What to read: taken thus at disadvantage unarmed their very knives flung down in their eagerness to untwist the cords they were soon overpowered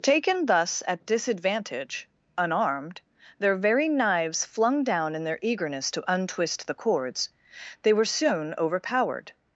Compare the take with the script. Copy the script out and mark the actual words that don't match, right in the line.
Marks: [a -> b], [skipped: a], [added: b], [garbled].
taken thus at disadvantage unarmed their very knives flung down in their eagerness to untwist the cords they were soon overpowered